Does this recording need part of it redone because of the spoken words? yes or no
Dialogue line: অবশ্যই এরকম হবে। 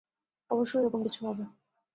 yes